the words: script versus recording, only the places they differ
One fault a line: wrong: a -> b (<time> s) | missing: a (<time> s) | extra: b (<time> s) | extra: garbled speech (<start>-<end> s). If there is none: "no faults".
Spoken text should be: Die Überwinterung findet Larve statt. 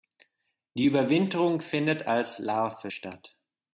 extra: als (2.1 s)